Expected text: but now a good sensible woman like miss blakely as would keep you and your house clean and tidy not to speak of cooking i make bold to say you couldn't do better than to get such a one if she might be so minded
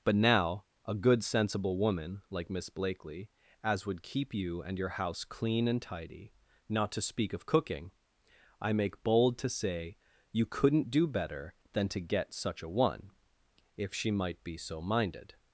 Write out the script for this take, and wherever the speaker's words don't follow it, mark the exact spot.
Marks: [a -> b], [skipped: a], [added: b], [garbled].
but now a good sensible woman like miss blakely as would keep you and your house clean and tidy not to speak of cooking i make bold to say you couldn't do better than to get such a one if she might be so minded